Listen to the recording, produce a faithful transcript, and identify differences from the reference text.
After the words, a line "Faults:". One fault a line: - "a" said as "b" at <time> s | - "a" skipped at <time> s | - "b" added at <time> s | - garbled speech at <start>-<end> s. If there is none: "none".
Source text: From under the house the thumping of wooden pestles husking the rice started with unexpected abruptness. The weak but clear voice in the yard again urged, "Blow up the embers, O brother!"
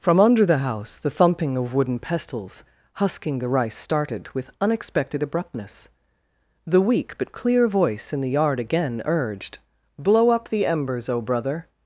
From under the house the thumping of wooden pestles husking the rice started with unexpected abruptness. The weak but clear voice in the yard again urged, "Blow up the embers, O brother!"
Faults:
none